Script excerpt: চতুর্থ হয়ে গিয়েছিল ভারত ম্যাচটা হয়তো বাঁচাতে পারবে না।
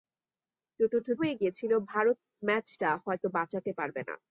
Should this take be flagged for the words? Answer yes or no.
no